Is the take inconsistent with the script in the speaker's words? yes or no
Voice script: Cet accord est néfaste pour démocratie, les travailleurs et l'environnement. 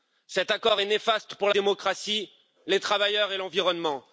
no